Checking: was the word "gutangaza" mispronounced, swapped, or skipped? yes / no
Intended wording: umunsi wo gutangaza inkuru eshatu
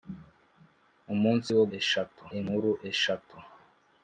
yes